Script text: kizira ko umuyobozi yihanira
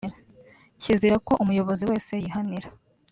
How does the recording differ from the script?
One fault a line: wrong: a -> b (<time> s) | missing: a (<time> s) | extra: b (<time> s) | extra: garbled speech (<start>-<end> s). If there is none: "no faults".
extra: wese (1.9 s)